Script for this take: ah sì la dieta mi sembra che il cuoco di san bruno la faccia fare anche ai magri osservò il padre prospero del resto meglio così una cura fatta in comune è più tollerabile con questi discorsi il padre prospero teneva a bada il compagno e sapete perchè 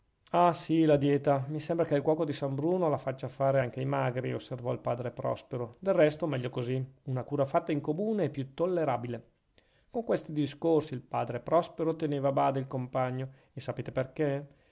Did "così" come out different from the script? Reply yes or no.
no